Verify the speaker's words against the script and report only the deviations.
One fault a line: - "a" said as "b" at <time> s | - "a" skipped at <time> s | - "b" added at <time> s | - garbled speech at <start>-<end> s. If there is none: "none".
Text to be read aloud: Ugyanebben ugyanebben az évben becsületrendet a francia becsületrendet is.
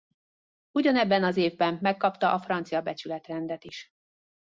- "ugyanebben" skipped at 1.2 s
- "becsületrendet" said as "megkapta" at 1.8 s